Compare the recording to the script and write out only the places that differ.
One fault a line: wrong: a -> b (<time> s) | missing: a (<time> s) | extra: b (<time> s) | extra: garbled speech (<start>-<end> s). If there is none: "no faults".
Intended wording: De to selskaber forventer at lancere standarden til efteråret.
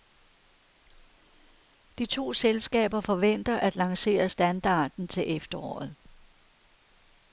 no faults